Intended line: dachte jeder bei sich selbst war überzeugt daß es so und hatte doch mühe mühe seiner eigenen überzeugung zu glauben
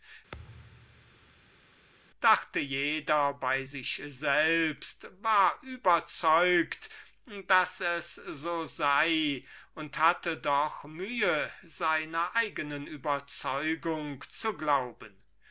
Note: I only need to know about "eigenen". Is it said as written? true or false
true